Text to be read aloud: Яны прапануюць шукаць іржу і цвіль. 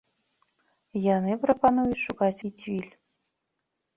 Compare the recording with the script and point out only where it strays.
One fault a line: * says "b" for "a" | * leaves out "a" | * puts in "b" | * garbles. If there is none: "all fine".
* leaves out "іржу"